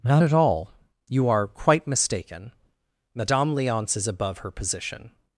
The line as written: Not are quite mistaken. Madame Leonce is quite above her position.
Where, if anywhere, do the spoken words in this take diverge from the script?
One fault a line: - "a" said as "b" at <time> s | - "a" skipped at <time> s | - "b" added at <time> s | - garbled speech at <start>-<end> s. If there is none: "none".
- "at all You" added at 0.2 s
- "quite" skipped at 4.1 s